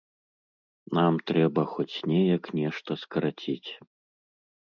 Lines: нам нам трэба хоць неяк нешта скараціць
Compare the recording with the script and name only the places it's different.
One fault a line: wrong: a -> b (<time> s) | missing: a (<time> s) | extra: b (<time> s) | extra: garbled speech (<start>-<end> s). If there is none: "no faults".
missing: нам (1.1 s)